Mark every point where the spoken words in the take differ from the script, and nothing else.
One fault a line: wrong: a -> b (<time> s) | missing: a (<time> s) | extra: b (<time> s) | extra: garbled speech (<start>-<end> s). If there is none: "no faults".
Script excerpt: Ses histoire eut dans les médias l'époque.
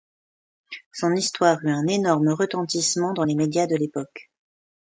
wrong: Ses -> Son (0.9 s)
extra: un énorme retentissement (1.7 s)
extra: de (3.7 s)